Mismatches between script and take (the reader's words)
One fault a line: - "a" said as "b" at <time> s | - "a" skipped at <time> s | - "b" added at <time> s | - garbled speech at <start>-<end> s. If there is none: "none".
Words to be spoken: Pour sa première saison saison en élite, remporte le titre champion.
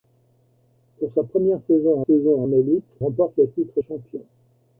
none